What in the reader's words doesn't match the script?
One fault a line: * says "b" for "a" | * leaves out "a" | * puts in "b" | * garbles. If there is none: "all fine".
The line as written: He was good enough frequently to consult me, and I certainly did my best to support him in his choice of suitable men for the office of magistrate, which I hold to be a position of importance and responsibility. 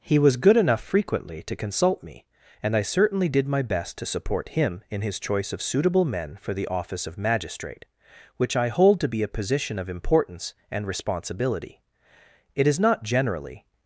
* puts in "It is not generally"